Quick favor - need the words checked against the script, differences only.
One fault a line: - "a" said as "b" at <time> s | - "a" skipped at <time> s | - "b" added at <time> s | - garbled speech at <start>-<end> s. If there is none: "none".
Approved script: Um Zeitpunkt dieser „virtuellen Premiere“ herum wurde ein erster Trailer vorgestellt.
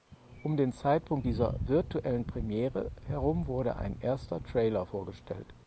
- "den" added at 0.6 s